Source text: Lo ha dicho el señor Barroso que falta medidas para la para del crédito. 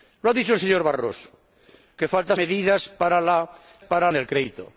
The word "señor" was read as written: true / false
true